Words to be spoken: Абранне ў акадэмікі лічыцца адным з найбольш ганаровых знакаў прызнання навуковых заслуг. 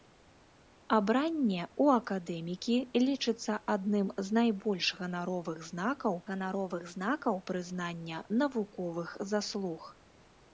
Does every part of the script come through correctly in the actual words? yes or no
no